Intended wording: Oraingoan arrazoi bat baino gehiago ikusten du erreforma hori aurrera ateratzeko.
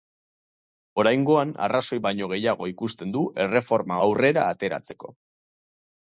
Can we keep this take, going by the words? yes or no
no